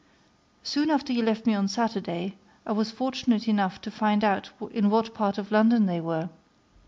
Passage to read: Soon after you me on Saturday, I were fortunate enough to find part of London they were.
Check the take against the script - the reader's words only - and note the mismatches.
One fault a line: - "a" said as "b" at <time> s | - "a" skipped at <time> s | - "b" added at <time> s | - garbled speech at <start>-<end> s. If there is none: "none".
- "left" added at 1.2 s
- "were" said as "was" at 2.7 s
- "out in what" added at 4.2 s